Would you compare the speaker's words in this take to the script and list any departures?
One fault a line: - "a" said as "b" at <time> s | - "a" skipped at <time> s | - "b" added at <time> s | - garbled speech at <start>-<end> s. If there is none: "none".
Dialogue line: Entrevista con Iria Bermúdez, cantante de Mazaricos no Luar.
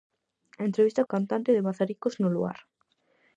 - "con Iria Bermúdez" skipped at 1.1 s